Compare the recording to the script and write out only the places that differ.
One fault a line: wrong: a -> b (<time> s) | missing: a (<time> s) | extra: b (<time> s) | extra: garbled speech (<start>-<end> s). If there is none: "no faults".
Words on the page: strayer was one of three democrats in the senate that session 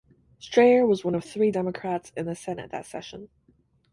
no faults